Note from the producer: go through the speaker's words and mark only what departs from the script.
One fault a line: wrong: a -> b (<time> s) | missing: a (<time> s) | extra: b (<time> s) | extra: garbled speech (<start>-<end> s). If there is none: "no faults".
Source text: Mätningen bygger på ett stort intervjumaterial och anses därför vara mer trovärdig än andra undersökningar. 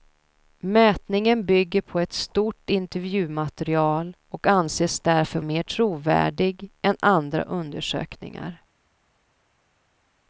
missing: vara (5.4 s)